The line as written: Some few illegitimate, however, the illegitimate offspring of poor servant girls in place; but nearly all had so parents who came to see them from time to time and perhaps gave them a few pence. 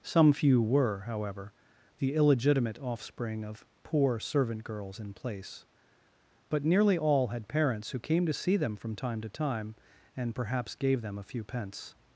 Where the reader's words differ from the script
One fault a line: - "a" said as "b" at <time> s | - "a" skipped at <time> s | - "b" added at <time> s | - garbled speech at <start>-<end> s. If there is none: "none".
- "illegitimate" said as "were" at 0.6 s
- "so" skipped at 7.5 s